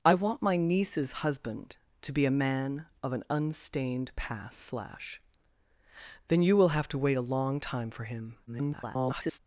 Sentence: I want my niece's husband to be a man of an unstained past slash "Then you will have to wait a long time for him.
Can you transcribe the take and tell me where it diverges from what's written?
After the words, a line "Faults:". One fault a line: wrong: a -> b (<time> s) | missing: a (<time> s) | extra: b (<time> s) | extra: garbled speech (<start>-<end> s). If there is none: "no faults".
I want my niece's husband to be a man of an unstained past slash "Then you will have to wait a long time for him. [garbled]
Faults:
extra: garbled speech (8.5-9.4 s)